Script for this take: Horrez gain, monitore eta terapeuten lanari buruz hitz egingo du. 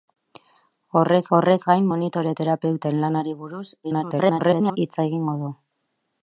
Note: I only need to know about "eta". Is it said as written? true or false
false